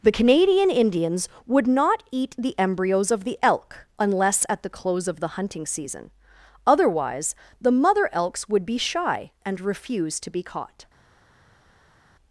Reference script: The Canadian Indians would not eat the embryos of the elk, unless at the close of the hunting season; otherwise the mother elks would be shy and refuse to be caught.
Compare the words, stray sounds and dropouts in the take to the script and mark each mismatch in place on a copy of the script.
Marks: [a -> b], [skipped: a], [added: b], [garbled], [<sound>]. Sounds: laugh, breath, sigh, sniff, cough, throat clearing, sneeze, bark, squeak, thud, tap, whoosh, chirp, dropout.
The Canadian Indians would not eat the embryos of the elk, unless at the close of the hunting season; otherwise the mother elks would be shy and refuse to be caught.